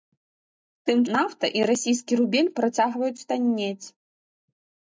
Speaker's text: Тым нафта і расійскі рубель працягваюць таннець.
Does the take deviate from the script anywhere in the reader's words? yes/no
no